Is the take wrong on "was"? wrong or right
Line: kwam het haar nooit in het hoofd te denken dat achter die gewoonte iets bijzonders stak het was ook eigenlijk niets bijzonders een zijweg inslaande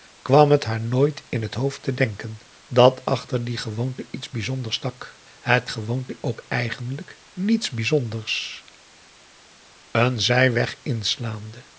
wrong